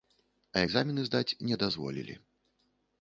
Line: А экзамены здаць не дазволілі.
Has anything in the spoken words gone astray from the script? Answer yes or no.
no